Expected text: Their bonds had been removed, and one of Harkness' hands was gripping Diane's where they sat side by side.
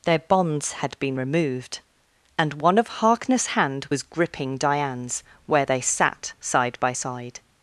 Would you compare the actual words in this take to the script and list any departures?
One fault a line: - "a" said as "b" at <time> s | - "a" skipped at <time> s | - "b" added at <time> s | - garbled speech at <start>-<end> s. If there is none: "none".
- "hands" said as "hand" at 3.5 s